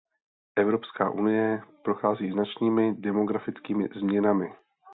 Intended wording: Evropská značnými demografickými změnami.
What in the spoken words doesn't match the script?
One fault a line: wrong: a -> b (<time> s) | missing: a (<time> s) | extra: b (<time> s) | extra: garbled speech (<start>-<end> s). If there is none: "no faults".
extra: unie prochází (1.1 s)